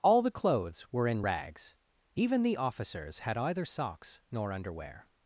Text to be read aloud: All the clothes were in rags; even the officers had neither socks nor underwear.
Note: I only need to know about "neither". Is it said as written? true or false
false